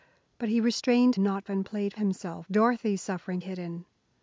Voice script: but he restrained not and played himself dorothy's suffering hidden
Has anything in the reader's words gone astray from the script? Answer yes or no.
no